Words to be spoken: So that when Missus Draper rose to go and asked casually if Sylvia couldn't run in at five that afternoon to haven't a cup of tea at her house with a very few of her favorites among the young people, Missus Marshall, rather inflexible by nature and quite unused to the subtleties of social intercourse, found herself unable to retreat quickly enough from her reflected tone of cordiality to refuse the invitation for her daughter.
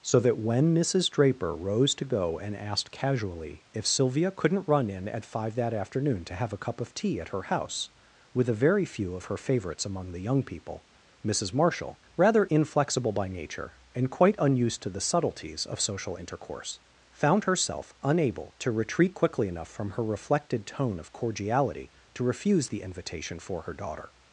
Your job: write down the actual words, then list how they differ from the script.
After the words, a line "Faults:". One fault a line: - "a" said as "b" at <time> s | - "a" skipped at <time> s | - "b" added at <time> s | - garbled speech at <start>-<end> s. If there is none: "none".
So that when Missus Draper rose to go and asked casually if Sylvia couldn't run in at five that afternoon to have a cup of tea at her house with a very few of her favorites among the young people, Missus Marshall, rather inflexible by nature and quite unused to the subtleties of social intercourse, found herself unable to retreat quickly enough from her reflected tone of cordiality to refuse the invitation for her daughter.
Faults:
- "haven't" said as "have" at 6.3 s